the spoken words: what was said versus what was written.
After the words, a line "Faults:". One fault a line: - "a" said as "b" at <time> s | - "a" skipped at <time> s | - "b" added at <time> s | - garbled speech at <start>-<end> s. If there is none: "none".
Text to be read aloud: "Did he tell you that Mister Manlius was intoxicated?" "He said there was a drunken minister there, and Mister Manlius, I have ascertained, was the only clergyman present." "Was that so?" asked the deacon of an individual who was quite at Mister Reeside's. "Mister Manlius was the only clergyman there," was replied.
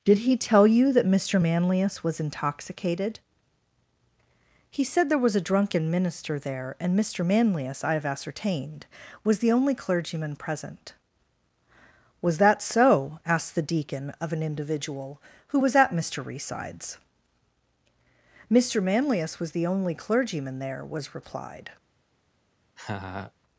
"Did he tell you that Mister Manlius was intoxicated?" "He said there was a drunken minister there, and Mister Manlius, I have ascertained, was the only clergyman present." "Was that so?" asked the deacon of an individual who was at Mister Reeside's. "Mister Manlius was the only clergyman there," was replied.
Faults:
- "quite" skipped at 15.8 s